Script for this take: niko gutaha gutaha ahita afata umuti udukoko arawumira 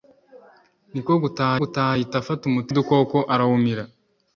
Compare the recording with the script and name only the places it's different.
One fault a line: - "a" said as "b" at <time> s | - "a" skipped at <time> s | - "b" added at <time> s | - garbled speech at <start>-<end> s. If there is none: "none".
none